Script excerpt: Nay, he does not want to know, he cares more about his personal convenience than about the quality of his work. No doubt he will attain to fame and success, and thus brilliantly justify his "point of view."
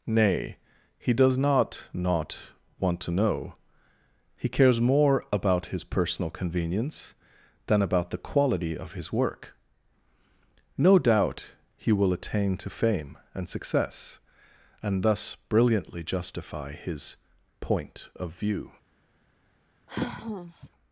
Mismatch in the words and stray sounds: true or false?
true